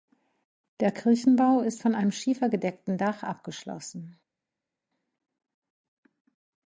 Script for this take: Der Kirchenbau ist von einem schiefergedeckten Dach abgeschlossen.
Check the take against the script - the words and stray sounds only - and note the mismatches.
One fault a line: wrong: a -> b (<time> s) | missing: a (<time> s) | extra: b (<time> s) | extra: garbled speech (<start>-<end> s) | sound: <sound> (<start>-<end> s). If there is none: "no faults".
no faults